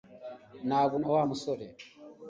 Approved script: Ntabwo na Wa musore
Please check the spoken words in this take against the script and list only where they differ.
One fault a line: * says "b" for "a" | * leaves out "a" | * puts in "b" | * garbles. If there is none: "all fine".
all fine